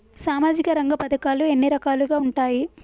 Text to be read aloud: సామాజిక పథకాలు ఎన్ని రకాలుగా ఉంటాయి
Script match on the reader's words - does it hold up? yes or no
no